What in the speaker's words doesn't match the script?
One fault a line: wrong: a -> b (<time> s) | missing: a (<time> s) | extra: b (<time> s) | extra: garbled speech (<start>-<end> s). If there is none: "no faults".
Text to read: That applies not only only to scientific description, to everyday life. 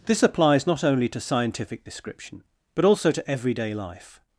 wrong: That -> This (0.1 s)
missing: only (1.1 s)
extra: but also (2.7 s)